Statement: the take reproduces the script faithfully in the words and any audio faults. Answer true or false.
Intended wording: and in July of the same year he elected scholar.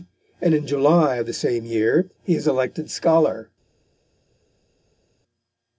false